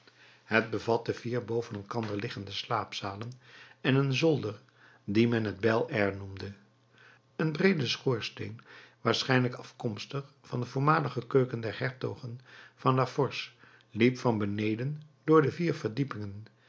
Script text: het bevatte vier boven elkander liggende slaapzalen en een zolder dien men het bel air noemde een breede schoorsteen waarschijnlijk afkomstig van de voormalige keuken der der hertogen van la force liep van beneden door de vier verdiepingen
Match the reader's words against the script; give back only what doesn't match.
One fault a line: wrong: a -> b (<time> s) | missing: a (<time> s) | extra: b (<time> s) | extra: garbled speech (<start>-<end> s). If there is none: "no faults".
missing: der (11.8 s)